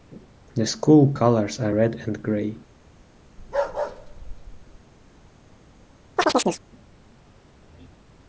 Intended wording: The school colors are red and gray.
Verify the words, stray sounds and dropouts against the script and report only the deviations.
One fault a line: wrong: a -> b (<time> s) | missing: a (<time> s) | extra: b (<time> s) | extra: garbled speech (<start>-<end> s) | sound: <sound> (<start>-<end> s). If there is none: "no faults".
sound: bark (3.4-4.8 s)
sound: chirp (6.2-6.6 s)